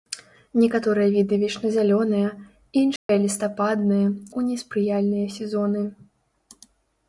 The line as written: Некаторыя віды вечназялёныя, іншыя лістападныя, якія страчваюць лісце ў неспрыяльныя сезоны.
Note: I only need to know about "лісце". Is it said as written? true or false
false